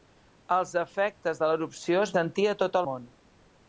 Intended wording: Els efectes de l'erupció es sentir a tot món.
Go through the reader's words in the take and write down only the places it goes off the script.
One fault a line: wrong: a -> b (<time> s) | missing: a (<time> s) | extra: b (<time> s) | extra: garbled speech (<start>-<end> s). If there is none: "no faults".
no faults